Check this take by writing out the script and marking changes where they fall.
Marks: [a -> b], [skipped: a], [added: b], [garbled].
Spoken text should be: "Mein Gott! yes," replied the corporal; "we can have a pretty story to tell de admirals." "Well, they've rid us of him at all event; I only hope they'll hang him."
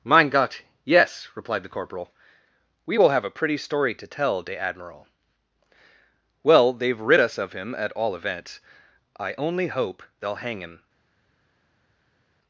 "Mein Gott! yes," replied the corporal; "we [can -> will] have a pretty story to tell de [admirals." -> admiral] "Well, they've rid us of him at all [event; -> events] I only hope they'll hang him."